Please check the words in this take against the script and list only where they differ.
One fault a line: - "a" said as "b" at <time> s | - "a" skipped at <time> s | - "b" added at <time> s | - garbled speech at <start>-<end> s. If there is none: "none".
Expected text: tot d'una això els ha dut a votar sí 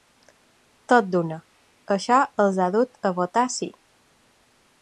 none